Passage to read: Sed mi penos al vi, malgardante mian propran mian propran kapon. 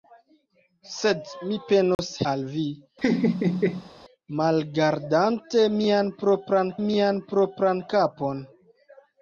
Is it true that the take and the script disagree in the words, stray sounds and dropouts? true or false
true